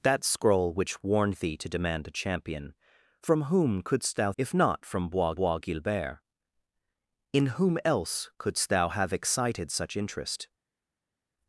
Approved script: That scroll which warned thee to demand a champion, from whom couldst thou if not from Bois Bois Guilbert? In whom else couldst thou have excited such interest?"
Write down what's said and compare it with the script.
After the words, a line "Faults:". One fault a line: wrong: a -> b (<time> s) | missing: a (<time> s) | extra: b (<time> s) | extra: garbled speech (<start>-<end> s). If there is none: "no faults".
That scroll which warned thee to demand a champion, from whom couldst thou if not from Bois Bois Guilbert? In whom else couldst thou have excited such interest?"
Faults:
no faults